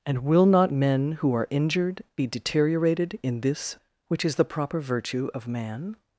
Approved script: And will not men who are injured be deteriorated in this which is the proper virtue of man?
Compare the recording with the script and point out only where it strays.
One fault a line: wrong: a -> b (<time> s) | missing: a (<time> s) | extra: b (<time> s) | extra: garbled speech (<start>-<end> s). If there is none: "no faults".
no faults